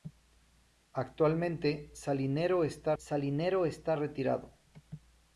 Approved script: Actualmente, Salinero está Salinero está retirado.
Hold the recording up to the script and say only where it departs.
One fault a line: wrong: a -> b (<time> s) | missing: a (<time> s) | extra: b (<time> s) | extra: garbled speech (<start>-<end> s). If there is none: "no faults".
no faults